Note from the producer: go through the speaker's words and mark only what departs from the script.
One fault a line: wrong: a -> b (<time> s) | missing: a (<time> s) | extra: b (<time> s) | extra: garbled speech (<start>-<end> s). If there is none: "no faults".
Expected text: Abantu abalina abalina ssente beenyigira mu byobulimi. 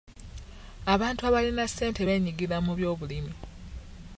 missing: abalina (1.6 s)